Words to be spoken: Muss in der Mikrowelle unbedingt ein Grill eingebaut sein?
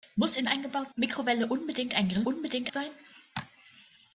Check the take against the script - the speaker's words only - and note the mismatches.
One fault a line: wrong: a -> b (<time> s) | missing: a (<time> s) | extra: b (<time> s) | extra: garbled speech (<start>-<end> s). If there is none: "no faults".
wrong: der -> eingebaut (0.5 s)
wrong: eingebaut -> unbedingt (2.2 s)